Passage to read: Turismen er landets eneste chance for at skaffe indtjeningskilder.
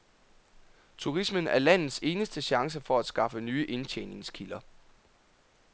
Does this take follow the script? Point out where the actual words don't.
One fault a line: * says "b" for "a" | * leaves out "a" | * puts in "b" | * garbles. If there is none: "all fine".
* puts in "nye"